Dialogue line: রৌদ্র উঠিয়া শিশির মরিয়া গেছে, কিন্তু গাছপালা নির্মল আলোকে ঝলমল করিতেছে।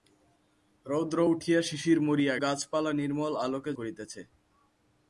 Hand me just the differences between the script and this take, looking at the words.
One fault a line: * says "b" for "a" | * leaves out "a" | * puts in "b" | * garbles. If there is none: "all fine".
* leaves out "গেছে কিন্তু"
* leaves out "ঝলমল"